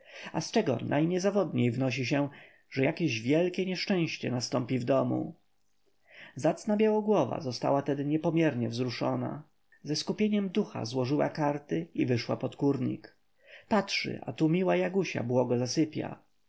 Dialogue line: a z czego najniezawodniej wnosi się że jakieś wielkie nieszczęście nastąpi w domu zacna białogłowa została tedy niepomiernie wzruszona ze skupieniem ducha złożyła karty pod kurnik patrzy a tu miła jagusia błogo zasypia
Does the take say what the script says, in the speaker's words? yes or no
no